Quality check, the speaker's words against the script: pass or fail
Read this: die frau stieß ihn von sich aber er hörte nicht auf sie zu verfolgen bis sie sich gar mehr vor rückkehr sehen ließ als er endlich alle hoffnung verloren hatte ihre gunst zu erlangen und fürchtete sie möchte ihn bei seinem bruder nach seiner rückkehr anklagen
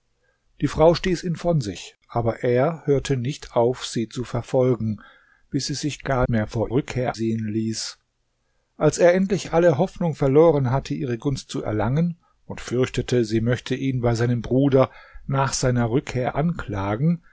pass